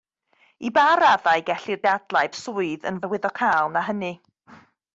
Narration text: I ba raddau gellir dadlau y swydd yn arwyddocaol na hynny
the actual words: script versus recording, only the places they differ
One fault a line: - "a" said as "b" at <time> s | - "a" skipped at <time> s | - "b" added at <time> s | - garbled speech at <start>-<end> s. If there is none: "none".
none